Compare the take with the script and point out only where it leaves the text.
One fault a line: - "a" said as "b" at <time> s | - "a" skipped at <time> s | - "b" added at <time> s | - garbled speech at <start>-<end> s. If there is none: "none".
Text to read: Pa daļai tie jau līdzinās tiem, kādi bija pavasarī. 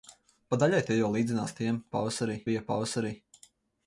- "kādi" said as "pavasarī" at 2.0 s